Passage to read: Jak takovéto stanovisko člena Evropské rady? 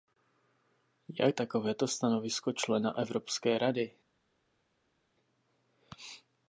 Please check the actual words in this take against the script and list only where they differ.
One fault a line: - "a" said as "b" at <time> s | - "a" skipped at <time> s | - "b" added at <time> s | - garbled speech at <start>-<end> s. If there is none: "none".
none